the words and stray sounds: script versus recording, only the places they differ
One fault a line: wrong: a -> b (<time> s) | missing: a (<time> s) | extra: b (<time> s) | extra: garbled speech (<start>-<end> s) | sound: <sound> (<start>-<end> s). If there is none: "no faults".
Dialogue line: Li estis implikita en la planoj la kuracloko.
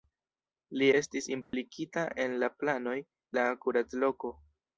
sound: dropout (1.4-1.5 s)